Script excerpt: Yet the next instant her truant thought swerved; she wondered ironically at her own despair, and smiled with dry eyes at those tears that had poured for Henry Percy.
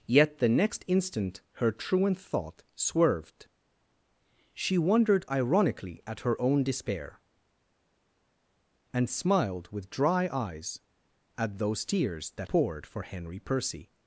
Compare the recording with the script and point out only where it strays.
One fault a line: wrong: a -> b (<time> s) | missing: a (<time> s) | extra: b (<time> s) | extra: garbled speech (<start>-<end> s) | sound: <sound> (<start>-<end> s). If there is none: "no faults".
missing: had (12.5 s)